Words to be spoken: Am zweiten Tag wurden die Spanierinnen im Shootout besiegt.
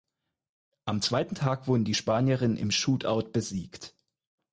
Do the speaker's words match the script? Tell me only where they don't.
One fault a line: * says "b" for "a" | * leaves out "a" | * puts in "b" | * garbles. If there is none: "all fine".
all fine